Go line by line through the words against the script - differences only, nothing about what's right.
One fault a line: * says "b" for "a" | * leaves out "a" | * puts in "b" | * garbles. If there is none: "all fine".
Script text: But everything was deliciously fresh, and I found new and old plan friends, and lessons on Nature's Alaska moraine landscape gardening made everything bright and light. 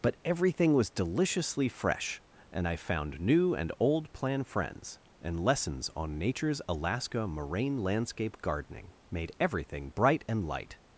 all fine